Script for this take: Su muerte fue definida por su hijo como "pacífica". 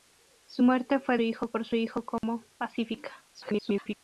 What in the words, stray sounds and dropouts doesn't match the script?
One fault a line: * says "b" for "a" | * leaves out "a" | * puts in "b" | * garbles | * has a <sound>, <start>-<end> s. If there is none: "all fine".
* says "hijo" for "definida"
* has a dropout, 2.2-2.2 s
* garbles